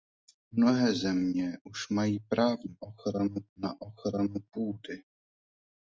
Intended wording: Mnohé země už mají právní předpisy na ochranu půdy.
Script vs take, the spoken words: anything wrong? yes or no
yes